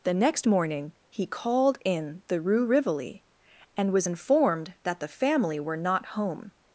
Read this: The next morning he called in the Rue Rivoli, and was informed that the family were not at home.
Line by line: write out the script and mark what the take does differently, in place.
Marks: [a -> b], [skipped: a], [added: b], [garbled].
The next morning he called in the Rue Rivoli, and was informed that the family were not [skipped: at] home.